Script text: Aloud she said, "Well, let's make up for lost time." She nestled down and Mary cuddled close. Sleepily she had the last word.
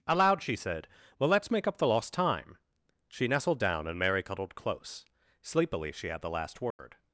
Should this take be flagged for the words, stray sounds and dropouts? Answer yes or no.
yes